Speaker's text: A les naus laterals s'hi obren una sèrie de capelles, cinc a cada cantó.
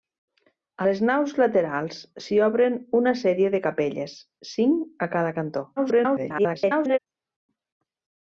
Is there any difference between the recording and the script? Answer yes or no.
yes